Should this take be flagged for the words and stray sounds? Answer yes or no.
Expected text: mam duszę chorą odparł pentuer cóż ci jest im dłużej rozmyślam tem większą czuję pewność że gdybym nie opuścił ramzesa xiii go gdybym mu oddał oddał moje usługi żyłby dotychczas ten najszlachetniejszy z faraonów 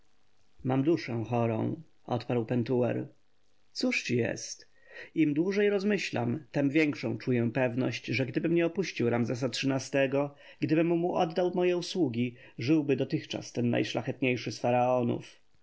yes